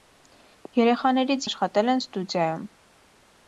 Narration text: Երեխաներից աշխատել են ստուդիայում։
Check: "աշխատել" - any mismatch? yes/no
no